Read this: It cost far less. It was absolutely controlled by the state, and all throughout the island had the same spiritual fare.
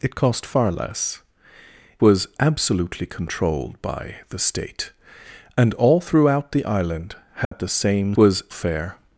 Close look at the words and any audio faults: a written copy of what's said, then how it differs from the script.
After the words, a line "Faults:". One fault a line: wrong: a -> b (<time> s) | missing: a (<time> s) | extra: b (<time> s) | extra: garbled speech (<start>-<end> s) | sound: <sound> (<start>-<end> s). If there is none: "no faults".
It cost far less. Was absolutely controlled by the state, and all throughout the island had the same was fare.
Faults:
missing: It (1.2 s)
sound: dropout (7.4-7.5 s)
wrong: spiritual -> was (8.2 s)